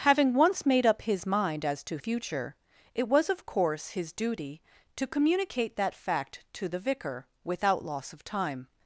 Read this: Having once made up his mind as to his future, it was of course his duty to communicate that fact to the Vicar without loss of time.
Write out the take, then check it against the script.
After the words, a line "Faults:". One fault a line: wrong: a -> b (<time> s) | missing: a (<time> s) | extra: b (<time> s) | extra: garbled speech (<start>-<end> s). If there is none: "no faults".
Having once made up his mind as to future, it was of course his duty to communicate that fact to the Vicar without loss of time.
Faults:
missing: his (2.0 s)